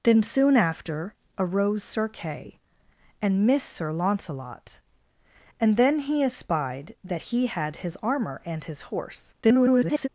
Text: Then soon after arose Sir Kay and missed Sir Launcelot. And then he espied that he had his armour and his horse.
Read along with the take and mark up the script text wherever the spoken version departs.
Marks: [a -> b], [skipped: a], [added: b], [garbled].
Then soon after arose Sir Kay and missed Sir Launcelot. And then he espied that he had his armour and his horse. [garbled]